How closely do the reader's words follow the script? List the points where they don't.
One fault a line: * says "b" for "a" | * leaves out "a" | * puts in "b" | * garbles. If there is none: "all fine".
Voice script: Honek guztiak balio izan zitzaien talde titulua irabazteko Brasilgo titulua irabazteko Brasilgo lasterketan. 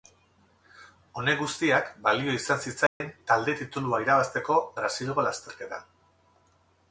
* leaves out "titulua irabazteko Brasilgo"